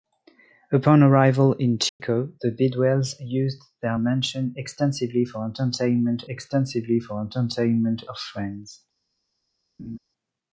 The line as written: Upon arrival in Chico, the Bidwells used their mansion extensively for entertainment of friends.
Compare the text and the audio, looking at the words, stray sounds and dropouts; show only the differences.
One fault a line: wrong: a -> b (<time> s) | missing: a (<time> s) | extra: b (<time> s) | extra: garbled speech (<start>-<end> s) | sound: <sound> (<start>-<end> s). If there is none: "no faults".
sound: dropout (1.9-2.0 s)
extra: extensively for entertainment (6.3 s)
sound: laugh (9.8-10.0 s)